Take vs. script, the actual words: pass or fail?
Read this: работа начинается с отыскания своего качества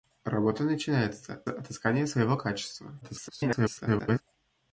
fail